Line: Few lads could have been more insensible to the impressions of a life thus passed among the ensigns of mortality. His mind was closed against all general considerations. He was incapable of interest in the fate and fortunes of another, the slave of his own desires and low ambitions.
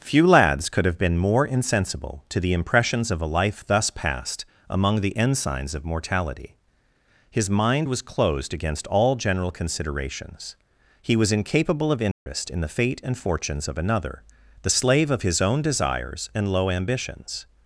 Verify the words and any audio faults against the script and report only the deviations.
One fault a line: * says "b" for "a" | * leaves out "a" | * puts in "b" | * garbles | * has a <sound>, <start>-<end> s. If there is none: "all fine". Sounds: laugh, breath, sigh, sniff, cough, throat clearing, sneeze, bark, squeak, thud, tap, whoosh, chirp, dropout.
* has a dropout, 12.1-12.3 s